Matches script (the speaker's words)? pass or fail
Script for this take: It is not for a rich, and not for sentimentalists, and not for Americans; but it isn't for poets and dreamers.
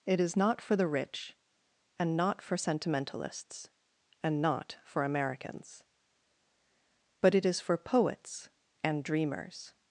fail